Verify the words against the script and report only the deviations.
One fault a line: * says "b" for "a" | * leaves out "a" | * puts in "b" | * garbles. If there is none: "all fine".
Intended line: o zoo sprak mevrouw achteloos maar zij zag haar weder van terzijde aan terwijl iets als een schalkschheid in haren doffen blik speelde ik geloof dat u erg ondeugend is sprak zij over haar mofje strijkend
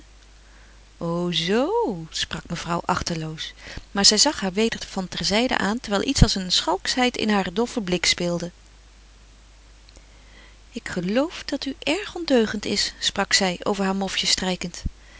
all fine